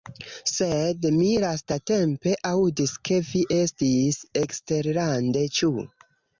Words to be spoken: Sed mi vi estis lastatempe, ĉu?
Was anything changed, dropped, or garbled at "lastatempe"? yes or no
yes